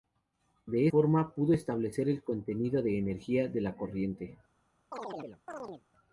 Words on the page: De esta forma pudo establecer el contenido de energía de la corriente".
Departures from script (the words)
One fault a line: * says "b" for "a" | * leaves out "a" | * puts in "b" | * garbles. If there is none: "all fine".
* leaves out "esta"